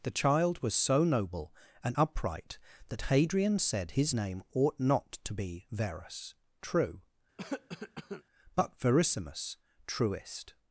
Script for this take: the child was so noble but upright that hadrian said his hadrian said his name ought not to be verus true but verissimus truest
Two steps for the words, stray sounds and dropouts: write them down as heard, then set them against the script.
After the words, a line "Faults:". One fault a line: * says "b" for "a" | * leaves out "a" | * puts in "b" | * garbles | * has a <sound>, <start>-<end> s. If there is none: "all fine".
the child was so noble and upright that hadrian said his name ought not to be verus true but verissimus truest
Faults:
* says "and" for "but"
* leaves out "hadrian said his"
* has a cough, 7.4-8.2 s